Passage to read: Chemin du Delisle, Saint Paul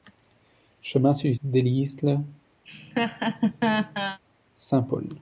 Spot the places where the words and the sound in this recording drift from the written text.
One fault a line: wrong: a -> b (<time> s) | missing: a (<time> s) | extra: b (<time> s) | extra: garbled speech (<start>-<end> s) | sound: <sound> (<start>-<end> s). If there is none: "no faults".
sound: laugh (2.6-4.2 s)